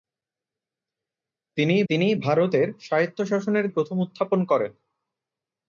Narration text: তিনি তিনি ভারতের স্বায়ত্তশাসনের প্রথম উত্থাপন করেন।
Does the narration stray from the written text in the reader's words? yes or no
no